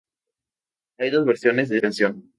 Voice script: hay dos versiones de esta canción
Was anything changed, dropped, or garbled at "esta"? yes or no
yes